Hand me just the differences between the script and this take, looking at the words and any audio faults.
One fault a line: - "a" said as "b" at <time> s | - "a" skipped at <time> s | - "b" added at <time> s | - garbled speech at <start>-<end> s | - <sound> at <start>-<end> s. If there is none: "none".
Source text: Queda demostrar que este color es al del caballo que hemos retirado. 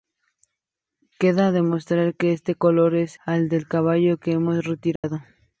- dropout at 5.0-5.0 s